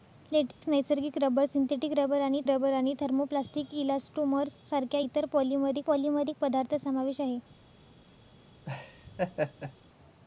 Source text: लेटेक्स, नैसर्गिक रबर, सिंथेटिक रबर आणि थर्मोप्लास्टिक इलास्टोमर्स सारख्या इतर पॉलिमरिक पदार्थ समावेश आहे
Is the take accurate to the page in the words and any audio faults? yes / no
no